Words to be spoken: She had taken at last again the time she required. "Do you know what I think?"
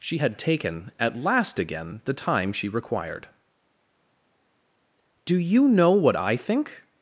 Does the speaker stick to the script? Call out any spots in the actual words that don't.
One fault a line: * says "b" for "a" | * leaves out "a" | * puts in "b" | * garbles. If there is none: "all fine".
all fine